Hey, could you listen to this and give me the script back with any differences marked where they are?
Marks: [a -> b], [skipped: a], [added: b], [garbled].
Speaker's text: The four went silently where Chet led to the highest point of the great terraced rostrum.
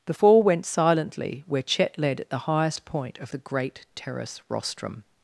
The four went silently where Chet led [to -> at] the highest point of the great [terraced -> terrace] rostrum.